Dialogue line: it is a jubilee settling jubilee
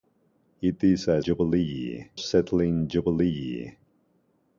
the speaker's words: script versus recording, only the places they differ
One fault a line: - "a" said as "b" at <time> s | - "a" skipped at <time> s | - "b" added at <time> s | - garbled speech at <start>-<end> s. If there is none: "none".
none